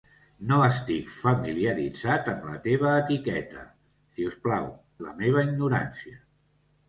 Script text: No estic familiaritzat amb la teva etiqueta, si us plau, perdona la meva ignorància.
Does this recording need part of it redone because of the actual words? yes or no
yes